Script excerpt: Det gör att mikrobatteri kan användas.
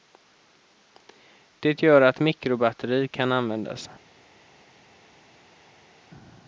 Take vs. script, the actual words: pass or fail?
pass